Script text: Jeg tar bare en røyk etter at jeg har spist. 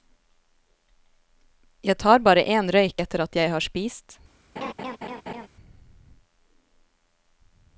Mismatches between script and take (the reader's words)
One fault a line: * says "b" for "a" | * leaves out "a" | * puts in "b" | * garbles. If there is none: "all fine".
all fine